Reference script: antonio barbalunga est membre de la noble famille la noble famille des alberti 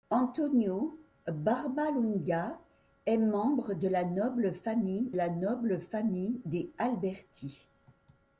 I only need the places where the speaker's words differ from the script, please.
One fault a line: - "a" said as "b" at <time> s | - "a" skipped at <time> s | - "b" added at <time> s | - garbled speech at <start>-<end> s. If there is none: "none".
none